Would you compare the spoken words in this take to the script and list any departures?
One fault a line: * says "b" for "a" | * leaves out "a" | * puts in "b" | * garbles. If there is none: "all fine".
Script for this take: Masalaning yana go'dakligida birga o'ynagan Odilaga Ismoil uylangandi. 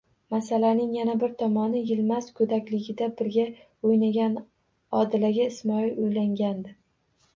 * puts in "bir tomoni Yilmaz"